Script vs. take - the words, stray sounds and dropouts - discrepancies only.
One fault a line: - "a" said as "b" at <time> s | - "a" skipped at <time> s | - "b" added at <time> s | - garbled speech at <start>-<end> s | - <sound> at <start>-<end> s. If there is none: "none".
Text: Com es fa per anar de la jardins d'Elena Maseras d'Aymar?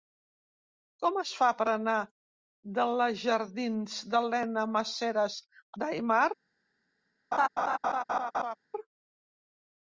- laugh at 7.3-8.6 s